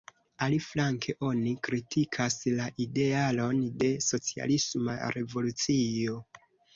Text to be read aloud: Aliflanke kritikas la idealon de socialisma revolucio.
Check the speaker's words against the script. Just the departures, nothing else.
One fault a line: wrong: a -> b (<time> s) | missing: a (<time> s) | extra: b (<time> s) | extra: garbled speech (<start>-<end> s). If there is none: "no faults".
extra: oni (1.2 s)